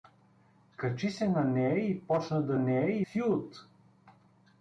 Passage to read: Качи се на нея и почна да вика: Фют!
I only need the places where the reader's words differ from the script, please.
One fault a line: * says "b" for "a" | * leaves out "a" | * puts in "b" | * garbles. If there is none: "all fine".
* says "нея" for "вика"